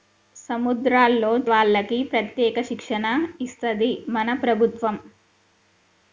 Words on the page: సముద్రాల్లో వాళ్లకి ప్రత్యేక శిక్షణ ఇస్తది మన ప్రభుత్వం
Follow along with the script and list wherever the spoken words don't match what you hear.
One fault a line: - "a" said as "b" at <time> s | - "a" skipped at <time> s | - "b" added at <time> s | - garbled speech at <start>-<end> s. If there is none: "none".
none